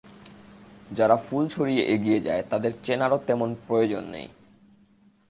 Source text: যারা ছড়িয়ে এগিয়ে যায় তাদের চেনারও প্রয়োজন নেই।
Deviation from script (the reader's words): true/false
true